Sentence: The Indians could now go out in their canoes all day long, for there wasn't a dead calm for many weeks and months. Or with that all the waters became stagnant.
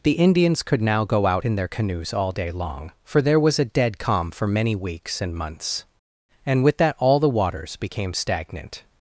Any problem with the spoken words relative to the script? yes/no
yes